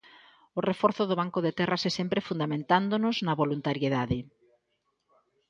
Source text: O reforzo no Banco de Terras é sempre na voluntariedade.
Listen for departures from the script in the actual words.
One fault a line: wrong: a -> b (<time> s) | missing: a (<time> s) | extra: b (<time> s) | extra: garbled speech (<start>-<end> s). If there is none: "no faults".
wrong: no -> do (1.1 s)
extra: fundamentándonos (2.3 s)